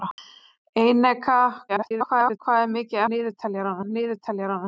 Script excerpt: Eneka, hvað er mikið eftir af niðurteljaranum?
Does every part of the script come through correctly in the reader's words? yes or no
no